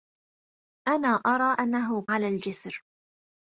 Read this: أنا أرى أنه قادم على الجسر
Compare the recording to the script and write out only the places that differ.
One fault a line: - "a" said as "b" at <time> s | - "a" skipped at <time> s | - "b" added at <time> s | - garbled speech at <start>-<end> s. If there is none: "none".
- "قادم" skipped at 2.1 s